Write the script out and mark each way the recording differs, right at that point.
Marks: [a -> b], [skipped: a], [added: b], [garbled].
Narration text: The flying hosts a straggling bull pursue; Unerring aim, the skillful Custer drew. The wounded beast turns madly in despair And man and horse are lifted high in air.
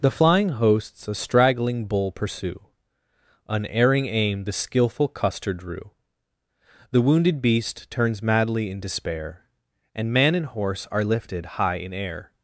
The flying hosts a straggling bull pursue; Unerring aim, the skillful Custer drew. The wounded beast turns madly in despair And man and horse are lifted high in air.